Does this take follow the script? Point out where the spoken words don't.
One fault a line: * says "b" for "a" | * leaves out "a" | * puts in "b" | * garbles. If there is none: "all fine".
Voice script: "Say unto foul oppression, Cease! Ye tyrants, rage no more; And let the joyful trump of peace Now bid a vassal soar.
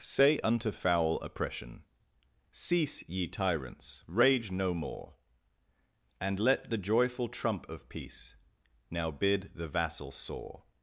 * says "the" for "a"